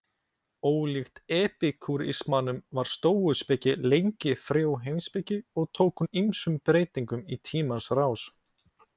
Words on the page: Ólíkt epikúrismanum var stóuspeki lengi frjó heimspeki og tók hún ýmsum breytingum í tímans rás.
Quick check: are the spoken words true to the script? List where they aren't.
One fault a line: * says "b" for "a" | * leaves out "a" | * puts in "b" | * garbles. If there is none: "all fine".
all fine